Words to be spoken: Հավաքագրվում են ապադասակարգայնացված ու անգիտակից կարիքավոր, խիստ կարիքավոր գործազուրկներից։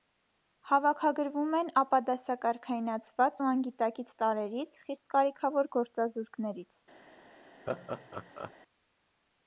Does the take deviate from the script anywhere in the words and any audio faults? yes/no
yes